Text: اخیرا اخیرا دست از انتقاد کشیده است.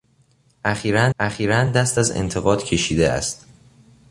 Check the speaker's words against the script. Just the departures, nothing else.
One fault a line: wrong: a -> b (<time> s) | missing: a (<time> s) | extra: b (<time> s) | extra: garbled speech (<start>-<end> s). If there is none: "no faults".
no faults